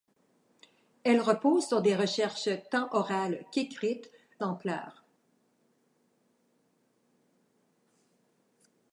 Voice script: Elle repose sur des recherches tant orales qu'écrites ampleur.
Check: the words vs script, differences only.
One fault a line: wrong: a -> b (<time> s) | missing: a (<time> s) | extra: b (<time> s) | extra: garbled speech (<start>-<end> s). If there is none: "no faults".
no faults